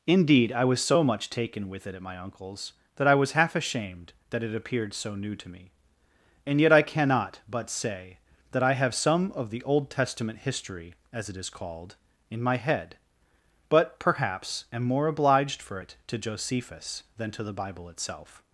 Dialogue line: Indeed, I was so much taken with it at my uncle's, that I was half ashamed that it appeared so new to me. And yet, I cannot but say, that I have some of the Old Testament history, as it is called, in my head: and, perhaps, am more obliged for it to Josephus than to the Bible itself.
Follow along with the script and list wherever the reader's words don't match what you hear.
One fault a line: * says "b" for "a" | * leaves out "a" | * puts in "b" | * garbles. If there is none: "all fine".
* says "but" for "and"